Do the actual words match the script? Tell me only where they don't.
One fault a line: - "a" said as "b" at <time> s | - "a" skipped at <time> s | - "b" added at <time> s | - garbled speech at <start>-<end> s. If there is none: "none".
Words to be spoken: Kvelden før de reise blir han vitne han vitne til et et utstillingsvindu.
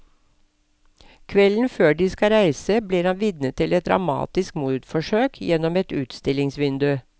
- "skal" added at 2.1 s
- "han vitne til et" said as "til et dramatisk mordforsøk gjennom" at 3.5 s